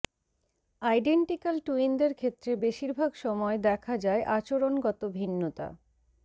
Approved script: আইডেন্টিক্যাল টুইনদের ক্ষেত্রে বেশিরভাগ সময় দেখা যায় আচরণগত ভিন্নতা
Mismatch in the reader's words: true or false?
false